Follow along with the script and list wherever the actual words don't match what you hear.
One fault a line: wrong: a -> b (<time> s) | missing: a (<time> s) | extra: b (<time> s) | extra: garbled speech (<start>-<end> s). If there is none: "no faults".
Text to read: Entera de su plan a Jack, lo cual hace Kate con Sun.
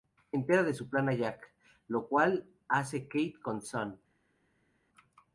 no faults